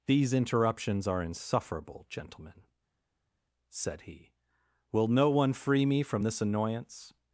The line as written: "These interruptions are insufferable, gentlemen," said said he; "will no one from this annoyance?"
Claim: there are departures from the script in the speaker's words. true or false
true